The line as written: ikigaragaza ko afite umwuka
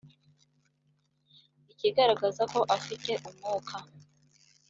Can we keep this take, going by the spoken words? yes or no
yes